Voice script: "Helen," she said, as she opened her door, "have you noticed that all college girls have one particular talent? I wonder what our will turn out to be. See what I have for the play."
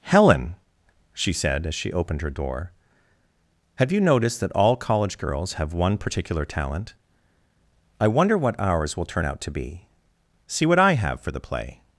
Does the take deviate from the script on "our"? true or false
true